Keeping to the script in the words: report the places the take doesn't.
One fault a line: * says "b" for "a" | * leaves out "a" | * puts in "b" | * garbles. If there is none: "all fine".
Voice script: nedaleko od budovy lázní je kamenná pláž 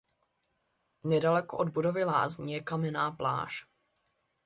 all fine